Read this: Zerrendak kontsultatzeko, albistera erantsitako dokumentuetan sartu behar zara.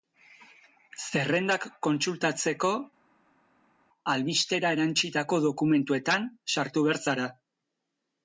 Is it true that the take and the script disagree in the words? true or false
false